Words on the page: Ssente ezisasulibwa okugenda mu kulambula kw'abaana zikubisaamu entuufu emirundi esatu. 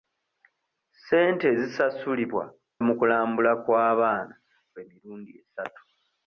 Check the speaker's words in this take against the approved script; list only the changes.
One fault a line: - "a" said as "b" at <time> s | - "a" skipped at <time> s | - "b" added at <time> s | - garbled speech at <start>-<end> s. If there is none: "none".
- "okugenda" skipped at 2.5 s
- "zikubisaamu entuufu" skipped at 4.3 s